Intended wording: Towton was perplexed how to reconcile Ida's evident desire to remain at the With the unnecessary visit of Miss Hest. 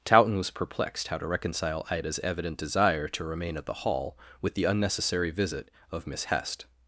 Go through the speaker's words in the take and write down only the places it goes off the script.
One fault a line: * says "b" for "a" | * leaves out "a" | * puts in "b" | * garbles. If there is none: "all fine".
* puts in "Hall"